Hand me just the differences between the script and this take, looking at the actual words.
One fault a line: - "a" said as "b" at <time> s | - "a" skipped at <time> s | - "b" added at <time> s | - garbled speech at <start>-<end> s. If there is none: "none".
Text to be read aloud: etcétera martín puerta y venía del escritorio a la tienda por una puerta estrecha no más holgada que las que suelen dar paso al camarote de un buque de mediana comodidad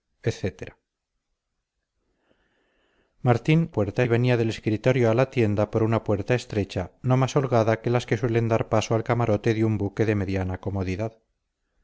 none